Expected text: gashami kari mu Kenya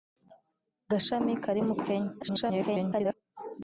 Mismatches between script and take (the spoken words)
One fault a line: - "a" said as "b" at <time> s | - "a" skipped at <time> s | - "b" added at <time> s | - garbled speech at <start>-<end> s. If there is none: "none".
- garbled speech at 2.2-3.1 s